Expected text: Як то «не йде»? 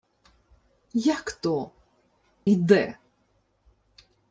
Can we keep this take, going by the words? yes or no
no